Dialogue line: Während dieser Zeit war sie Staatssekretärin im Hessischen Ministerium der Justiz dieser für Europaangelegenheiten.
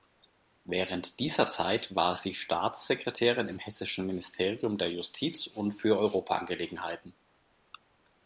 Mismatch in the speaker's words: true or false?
true